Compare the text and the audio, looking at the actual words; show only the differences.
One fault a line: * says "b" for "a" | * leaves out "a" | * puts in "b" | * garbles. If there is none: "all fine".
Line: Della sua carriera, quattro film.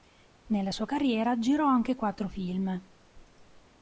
* says "Nella" for "Della"
* puts in "girò anche"